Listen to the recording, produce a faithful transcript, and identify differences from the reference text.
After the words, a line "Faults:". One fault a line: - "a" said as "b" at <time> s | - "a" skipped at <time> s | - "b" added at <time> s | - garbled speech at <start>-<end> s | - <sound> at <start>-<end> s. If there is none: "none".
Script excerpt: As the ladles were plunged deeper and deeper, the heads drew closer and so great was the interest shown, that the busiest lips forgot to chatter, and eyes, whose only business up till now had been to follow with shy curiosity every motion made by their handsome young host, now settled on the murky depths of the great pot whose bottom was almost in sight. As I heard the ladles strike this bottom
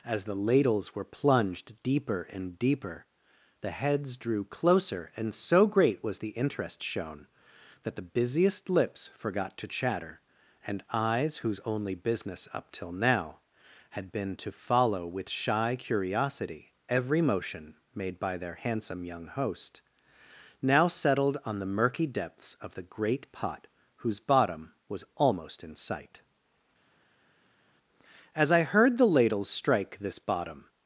As the ladles were plunged deeper and deeper, the heads drew closer and so great was the interest shown, that the busiest lips forgot to chatter, and eyes, whose only business up till now had been to follow with shy curiosity every motion made by their handsome young host, now settled on the murky depths of the great pot whose bottom was almost in sight. As I heard the ladles strike this bottom
Faults:
none